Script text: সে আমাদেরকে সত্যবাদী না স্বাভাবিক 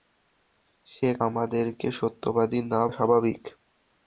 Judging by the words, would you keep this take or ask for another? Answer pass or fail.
pass